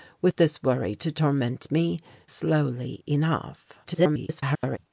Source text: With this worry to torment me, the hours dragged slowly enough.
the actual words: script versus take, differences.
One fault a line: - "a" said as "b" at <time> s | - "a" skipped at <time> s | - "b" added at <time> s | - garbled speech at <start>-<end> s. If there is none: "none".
- "the hours dragged" skipped at 2.0 s
- garbled speech at 3.8-4.8 s